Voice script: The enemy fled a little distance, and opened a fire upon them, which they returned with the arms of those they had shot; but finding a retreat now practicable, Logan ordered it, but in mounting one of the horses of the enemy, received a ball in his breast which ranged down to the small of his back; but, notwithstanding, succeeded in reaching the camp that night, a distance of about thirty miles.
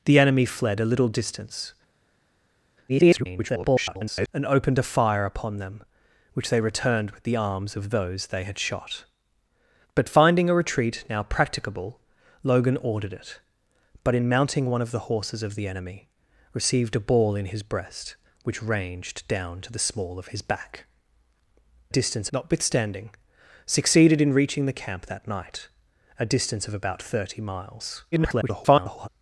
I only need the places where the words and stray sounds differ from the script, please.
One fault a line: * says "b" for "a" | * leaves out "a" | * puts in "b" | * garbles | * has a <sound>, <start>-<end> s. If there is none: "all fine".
* garbles
* says "distance" for "but"
* garbles